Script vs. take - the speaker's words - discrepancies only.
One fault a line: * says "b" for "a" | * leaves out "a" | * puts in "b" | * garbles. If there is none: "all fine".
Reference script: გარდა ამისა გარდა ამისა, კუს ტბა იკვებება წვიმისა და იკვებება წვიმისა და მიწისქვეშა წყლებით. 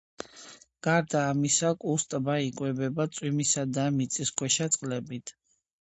* leaves out "გარდა ამისა"
* leaves out "იკვებება წვიმისა და"